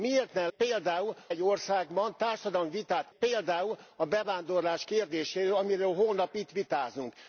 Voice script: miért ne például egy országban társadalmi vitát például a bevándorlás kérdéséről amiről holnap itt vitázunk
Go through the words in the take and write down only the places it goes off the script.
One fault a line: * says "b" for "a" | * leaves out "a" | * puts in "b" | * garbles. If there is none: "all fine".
all fine